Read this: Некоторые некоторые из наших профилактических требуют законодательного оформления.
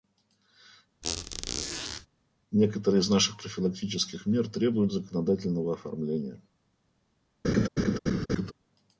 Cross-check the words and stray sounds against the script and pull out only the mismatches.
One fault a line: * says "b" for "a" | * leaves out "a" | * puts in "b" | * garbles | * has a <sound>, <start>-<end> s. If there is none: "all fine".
* has a squeak, 1.0-2.1 s
* leaves out "некоторые"
* puts in "мер"
* has a laugh, 7.4-8.5 s